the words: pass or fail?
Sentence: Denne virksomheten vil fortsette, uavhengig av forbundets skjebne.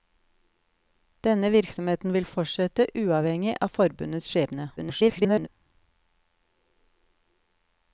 fail